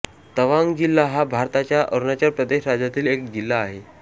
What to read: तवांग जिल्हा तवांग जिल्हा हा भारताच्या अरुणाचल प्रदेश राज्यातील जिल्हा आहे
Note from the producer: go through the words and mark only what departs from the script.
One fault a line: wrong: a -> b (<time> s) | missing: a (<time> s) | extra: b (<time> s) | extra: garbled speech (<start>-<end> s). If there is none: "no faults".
missing: तवांग जिल्हा (1.1 s)
extra: एक (3.1 s)